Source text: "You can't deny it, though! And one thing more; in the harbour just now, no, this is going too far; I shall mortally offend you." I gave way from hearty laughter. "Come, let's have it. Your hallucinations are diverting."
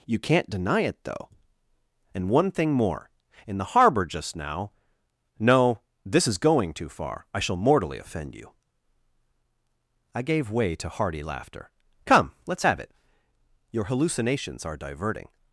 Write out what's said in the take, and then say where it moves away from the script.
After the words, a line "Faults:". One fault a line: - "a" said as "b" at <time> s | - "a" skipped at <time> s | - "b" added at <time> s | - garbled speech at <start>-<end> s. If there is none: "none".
"You can't deny it, though! And one thing more; in the harbour just now, no, this is going too far; I shall mortally offend you." I gave way to hearty laughter. "Come, let's have it. Your hallucinations are diverting."
Faults:
- "from" said as "to" at 10.8 s